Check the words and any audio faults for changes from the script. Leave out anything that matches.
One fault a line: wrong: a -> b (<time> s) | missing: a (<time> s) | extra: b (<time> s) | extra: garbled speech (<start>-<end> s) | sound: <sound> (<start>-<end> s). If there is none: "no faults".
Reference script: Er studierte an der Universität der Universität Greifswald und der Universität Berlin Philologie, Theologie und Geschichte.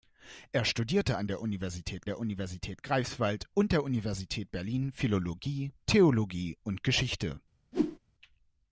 sound: whoosh (7.7-8.0 s)